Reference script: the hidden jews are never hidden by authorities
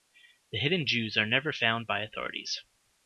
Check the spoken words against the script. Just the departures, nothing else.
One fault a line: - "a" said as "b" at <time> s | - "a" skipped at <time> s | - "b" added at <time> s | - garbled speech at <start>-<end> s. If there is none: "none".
- "hidden" said as "found" at 1.5 s